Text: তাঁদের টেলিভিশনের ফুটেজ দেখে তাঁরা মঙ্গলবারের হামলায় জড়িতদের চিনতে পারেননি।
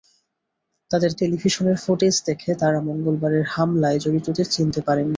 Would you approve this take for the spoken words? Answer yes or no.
yes